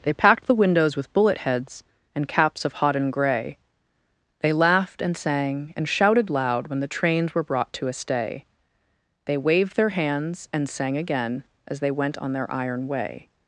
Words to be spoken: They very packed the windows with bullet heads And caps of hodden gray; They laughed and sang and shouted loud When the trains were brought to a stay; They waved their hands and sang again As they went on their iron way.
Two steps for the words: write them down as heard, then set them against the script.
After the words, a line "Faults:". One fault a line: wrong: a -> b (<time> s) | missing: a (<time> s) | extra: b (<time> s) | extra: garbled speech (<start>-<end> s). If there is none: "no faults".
They packed the windows with bullet heads And caps of hodden gray; They laughed and sang and shouted loud When the trains were brought to a stay; They waved their hands and sang again As they went on their iron way.
Faults:
missing: very (0.1 s)